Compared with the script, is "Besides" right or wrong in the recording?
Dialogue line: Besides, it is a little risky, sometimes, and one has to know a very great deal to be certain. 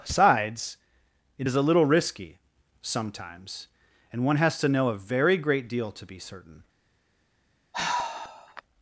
wrong